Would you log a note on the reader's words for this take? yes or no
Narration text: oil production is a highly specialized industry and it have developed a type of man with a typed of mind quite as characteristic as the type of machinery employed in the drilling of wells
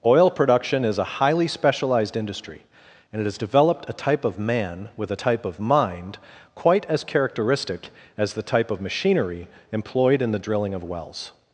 yes